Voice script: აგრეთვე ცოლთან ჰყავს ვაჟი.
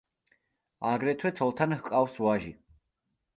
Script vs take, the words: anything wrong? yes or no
no